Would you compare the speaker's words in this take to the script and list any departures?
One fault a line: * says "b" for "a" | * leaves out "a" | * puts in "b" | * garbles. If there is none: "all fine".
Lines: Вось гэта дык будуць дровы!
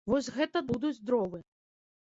* leaves out "дык"